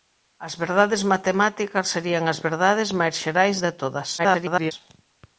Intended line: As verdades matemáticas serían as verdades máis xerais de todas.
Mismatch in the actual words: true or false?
true